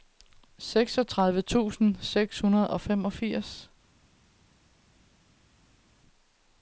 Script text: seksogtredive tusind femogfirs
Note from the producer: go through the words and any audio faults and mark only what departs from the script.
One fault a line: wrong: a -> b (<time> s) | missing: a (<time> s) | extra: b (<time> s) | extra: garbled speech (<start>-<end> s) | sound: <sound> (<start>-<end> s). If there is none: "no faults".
extra: seks hundrede og (2.0 s)